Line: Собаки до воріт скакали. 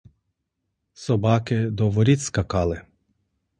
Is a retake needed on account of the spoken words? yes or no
no